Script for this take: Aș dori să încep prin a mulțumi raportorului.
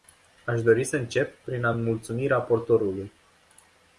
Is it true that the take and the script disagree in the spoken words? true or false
false